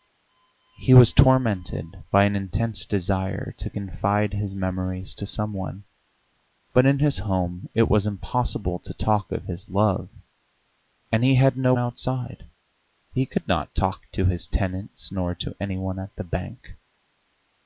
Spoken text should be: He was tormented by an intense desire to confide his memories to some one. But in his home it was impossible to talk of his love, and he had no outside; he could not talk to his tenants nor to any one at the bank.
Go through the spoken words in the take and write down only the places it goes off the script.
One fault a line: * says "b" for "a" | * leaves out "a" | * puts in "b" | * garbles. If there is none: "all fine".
all fine